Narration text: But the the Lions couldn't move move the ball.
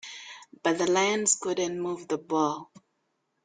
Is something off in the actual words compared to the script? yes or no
yes